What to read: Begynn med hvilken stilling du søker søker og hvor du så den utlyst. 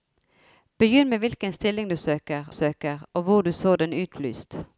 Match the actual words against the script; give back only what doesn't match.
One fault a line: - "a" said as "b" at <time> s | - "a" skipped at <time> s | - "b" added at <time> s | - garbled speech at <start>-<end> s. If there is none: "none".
none